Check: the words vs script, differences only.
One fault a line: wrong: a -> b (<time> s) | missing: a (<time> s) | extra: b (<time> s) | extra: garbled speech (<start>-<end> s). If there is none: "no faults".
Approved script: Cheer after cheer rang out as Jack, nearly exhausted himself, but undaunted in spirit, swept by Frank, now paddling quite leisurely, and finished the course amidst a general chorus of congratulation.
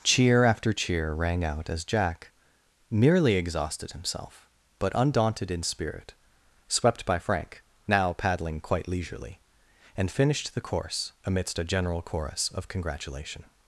wrong: nearly -> merely (2.9 s)